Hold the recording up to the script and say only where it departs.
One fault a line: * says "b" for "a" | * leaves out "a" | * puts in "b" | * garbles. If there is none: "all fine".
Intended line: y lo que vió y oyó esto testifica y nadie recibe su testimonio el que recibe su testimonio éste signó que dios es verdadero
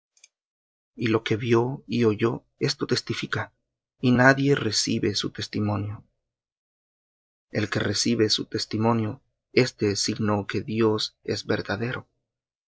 all fine